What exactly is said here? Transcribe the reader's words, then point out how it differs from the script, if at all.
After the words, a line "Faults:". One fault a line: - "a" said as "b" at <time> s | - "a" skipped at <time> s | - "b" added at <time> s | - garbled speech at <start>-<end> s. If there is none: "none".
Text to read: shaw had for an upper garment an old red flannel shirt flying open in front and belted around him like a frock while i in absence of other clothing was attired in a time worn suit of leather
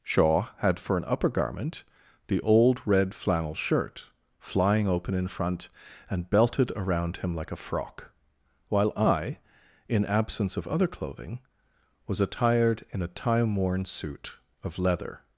shaw had for an upper garment the old red flannel shirt flying open in front and belted around him like a frock while i in absence of other clothing was attired in a time worn suit of leather
Faults:
- "an" said as "the" at 2.3 s